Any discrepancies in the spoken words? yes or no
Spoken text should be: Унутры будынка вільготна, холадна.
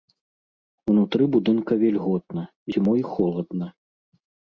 yes